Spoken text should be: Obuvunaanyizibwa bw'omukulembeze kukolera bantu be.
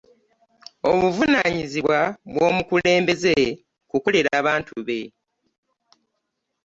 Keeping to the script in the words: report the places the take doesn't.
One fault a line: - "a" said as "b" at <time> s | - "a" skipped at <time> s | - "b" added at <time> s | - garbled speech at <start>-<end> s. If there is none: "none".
none